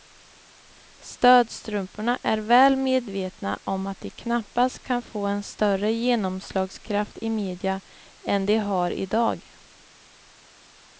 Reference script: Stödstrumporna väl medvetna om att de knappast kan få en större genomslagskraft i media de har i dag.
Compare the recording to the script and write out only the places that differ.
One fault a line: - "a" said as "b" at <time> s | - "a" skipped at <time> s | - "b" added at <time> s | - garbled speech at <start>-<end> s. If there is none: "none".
- "är" added at 2.2 s
- "än" added at 8.2 s